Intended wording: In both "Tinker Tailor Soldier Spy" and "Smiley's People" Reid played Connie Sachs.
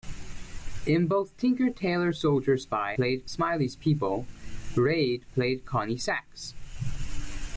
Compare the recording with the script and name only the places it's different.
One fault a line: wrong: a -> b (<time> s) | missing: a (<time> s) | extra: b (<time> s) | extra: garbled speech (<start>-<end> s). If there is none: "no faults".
wrong: and -> played (3.0 s)